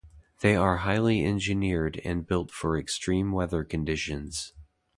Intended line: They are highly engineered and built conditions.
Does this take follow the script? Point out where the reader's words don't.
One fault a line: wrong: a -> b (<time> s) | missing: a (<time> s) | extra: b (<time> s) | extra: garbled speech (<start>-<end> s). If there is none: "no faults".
extra: for extreme weather (2.5 s)